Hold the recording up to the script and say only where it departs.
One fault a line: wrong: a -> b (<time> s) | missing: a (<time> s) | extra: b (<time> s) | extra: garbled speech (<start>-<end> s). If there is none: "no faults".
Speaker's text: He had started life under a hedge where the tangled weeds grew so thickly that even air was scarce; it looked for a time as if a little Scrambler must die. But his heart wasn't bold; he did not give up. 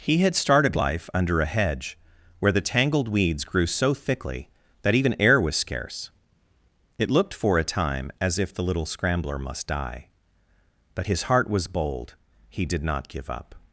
wrong: a -> the (8.5 s)
wrong: wasn't -> was (11.5 s)